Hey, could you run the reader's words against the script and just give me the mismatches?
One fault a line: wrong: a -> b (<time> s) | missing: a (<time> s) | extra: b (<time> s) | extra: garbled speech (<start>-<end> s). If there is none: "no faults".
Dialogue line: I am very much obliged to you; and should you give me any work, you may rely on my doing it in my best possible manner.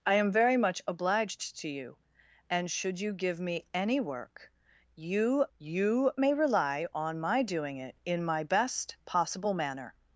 extra: you (5.6 s)